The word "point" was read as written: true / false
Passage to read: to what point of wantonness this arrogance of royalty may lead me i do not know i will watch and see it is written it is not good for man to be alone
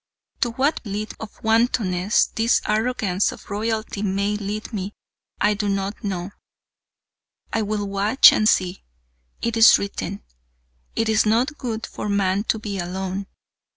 false